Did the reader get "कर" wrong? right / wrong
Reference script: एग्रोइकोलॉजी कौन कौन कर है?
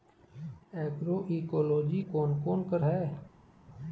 right